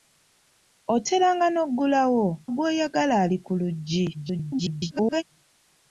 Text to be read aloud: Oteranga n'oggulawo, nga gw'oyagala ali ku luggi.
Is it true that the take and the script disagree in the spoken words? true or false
true